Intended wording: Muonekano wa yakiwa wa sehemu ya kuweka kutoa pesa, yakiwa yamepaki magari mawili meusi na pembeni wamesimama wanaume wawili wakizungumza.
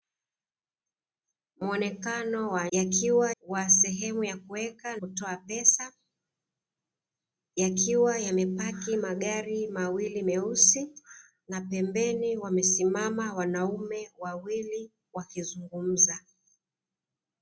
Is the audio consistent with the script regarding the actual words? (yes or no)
yes